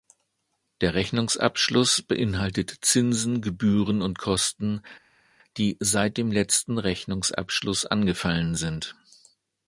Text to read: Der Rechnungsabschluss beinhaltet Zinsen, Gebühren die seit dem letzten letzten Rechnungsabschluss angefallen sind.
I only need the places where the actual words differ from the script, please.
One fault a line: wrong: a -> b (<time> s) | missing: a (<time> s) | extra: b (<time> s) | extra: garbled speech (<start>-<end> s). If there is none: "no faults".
extra: und Kosten (4.0 s)
missing: letzten (6.8 s)